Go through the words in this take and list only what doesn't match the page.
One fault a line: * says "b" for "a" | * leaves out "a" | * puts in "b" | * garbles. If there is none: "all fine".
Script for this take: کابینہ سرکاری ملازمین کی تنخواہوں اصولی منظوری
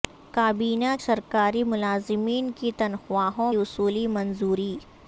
all fine